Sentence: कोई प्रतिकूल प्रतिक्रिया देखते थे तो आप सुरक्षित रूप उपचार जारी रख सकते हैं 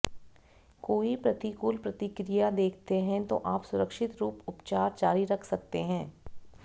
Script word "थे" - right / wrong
wrong